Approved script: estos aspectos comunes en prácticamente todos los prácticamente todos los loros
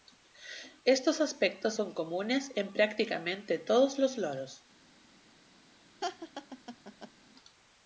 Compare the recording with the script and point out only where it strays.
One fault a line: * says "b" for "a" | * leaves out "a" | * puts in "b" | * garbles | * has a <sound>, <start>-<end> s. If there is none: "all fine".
* puts in "son"
* leaves out "prácticamente todos los"
* has a laugh, 6.0-7.1 s